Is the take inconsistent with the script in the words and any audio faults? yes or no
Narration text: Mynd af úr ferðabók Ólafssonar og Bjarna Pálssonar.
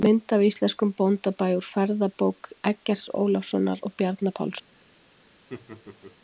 yes